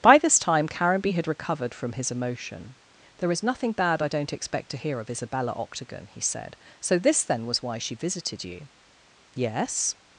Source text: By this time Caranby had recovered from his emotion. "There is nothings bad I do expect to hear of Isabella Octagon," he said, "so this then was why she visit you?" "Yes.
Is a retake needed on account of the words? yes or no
yes